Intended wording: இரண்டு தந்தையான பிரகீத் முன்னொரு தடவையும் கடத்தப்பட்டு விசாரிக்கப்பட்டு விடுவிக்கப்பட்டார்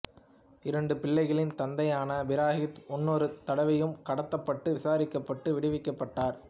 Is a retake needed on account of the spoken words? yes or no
yes